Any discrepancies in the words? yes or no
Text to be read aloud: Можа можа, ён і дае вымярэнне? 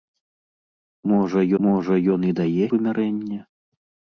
no